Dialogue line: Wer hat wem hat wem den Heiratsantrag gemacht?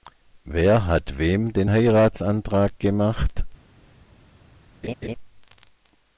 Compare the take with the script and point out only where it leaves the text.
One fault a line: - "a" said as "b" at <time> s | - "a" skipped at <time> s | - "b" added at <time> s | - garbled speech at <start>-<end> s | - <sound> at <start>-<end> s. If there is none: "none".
- "hat wem" skipped at 1.5 s
- laugh at 4.8-5.1 s